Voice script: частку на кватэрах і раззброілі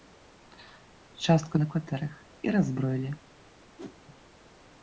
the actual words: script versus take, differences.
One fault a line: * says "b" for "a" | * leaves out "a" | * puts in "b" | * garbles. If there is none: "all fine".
all fine